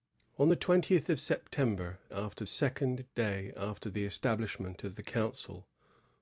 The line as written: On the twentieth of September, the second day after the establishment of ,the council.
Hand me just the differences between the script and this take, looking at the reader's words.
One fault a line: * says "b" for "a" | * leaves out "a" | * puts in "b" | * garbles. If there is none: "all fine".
* says "after" for "the"